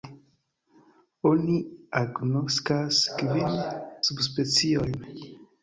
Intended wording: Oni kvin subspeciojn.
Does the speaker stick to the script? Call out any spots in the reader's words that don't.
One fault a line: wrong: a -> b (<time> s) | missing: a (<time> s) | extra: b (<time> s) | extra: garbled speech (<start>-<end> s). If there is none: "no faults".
extra: agnoskas (2.0 s)